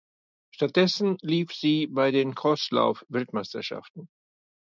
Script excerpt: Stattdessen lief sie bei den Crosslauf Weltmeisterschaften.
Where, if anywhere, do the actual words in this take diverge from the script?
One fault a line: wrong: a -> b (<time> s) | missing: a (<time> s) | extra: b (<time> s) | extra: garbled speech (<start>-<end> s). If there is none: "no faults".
no faults